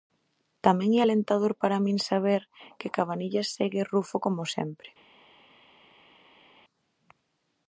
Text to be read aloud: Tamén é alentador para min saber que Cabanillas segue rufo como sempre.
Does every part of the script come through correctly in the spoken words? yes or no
yes